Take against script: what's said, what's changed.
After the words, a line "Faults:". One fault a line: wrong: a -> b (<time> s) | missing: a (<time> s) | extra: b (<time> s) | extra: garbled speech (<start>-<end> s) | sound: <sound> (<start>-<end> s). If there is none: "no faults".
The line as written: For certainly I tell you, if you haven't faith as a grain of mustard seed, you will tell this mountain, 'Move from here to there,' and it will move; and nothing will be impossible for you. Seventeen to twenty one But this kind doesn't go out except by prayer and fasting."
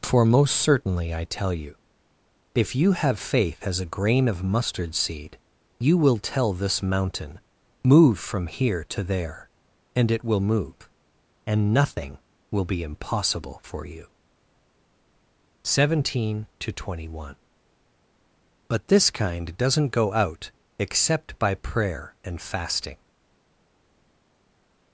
For most certainly I tell you, if you have faith as a grain of mustard seed, you will tell this mountain, 'Move from here to there,' and it will move; and nothing will be impossible for you. Seventeen to twenty one But this kind doesn't go out except by prayer and fasting."
Faults:
extra: most (0.2 s)
wrong: haven't -> have (2.9 s)